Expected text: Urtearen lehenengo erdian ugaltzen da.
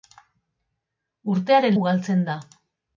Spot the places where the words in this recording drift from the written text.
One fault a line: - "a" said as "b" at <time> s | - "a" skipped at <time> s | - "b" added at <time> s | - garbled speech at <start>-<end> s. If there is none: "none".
- "lehenengo erdian" skipped at 1.8 s